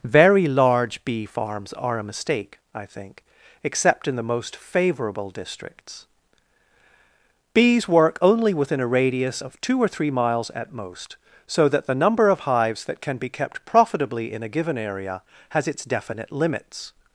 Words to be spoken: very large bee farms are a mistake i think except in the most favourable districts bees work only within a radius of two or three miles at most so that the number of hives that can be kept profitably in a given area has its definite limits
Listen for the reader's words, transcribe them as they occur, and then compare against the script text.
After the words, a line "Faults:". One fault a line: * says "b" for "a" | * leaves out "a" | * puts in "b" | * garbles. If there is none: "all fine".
very large bee farms are a mistake i think except in the most favourable districts bees work only within a radius of two or three miles at most so that the number of hives that can be kept profitably in a given area has its definite limits
Faults:
all fine